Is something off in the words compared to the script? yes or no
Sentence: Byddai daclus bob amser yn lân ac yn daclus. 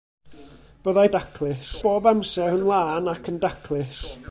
no